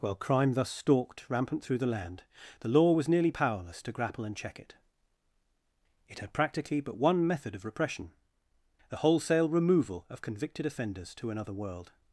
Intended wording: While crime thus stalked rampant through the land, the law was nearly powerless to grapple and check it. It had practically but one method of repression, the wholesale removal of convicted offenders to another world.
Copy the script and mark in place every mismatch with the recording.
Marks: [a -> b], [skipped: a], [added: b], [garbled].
While crime thus stalked rampant through the land, the law was nearly powerless to grapple and check it. It had practically but one method of repression, the wholesale removal of convicted offenders to another world.